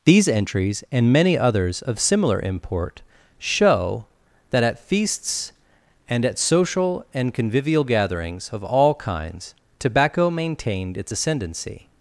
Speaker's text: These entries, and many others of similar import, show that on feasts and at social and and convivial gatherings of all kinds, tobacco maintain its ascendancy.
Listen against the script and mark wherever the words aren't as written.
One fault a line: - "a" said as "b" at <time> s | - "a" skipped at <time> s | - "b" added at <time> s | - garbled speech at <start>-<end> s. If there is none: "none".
- "on" said as "at" at 4.6 s
- "and" skipped at 7.3 s
- "maintain" said as "maintained" at 10.3 s